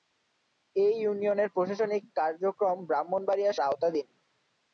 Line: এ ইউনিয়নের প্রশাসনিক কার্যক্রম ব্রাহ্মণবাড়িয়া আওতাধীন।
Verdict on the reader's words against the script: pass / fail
pass